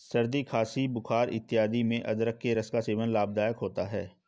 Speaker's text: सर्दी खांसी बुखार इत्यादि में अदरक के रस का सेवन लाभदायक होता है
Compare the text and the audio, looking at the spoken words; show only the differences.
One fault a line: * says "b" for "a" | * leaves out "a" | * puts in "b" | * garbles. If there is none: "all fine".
all fine